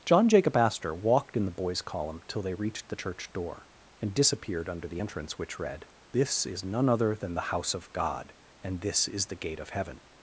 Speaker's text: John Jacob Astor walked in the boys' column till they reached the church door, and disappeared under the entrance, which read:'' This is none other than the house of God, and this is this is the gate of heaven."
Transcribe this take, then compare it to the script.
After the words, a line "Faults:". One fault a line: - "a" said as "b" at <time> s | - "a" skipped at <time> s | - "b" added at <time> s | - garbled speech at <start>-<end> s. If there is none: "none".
John Jacob Astor walked in the boys' column till they reached the church door, and disappeared under the entrance, which read:'' This is none other than the house of God, and this is the gate of heaven."
Faults:
- "this is" skipped at 9.3 s